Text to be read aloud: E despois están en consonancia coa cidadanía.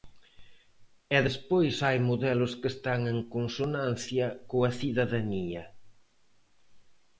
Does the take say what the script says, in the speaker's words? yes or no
no